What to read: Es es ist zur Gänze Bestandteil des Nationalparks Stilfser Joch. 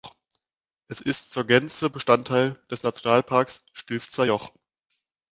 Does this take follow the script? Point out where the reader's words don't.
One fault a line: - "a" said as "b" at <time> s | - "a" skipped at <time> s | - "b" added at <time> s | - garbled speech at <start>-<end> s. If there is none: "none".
- "es" skipped at 1.0 s